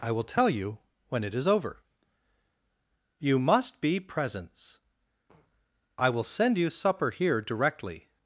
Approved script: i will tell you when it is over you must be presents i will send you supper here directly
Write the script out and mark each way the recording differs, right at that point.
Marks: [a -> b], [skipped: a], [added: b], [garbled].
i will tell you when it is over you must be presents i will send you supper here directly